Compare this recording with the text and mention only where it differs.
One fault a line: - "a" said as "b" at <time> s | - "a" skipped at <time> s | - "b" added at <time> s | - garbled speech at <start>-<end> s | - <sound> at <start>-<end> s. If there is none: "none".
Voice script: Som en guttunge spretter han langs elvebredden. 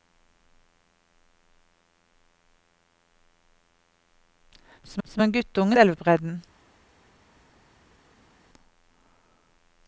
- "som" added at 5.0 s
- "spretter han langs" skipped at 5.8 s